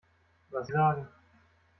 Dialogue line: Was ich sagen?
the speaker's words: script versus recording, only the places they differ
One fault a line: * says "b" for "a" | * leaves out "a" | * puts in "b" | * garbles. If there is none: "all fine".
all fine